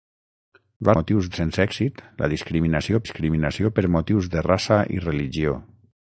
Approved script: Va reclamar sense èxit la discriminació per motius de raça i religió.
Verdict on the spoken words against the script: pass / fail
fail